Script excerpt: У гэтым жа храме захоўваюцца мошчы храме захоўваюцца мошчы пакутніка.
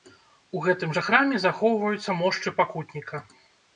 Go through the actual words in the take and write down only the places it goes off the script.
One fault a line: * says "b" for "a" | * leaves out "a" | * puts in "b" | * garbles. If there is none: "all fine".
* leaves out "храме захоўваюцца мошчы"